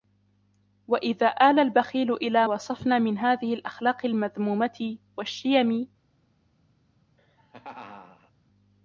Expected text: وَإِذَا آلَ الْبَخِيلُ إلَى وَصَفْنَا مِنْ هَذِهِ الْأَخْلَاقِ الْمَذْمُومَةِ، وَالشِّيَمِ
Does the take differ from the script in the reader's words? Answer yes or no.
no